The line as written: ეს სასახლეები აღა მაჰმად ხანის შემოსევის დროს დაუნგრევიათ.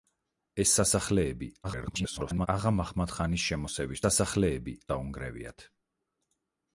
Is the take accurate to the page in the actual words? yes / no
no